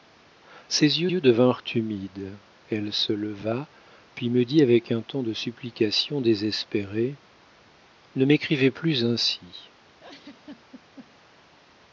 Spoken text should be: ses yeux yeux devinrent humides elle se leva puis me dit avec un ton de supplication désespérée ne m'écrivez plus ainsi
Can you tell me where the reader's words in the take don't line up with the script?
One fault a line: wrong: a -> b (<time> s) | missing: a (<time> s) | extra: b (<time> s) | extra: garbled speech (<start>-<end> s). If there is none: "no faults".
no faults